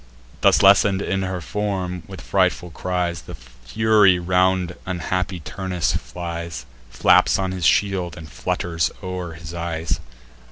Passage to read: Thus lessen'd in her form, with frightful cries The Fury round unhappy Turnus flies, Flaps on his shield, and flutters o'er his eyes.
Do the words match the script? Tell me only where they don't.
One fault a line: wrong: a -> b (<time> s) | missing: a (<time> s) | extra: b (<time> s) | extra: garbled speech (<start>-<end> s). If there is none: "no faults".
no faults